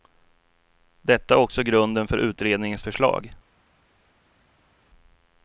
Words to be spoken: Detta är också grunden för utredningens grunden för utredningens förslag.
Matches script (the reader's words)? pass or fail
fail